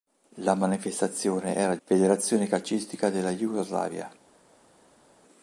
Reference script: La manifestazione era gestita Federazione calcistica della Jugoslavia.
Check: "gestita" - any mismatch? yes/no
yes